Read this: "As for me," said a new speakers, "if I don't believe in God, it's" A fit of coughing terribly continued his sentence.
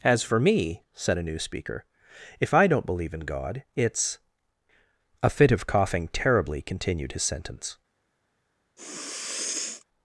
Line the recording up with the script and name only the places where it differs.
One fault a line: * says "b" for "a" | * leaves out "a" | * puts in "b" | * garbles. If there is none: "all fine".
* says "speaker" for "speakers"